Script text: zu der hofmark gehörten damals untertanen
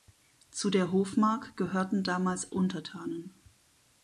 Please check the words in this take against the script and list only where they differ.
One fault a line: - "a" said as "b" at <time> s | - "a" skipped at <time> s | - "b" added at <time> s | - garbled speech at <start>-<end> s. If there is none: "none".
none